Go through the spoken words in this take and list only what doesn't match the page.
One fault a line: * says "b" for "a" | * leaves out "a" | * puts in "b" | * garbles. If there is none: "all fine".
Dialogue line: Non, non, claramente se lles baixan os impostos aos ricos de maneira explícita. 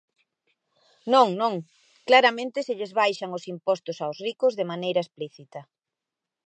all fine